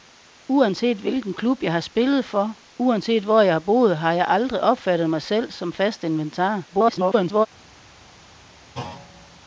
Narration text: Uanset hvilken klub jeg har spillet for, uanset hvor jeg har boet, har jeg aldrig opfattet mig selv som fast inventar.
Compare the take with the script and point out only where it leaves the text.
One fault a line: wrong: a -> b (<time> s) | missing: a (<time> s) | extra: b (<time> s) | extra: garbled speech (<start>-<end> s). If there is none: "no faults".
extra: garbled speech (6.7-7.5 s)